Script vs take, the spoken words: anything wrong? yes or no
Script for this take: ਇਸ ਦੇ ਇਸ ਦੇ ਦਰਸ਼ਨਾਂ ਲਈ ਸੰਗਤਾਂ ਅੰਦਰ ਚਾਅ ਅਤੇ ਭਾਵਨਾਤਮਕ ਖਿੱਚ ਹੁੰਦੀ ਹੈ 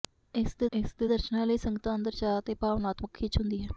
no